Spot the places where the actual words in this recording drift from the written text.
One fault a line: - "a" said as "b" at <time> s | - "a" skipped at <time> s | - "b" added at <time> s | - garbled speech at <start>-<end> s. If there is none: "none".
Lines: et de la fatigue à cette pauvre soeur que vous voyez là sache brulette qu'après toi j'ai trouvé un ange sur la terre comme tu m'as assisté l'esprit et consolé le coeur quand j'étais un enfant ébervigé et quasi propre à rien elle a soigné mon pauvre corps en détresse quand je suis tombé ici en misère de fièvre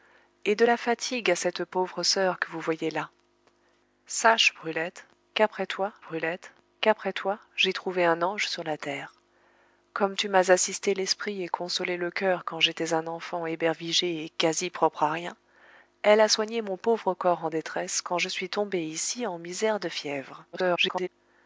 - "brulette qu'après toi" added at 6.0 s
- garbled speech at 20.5-21.1 s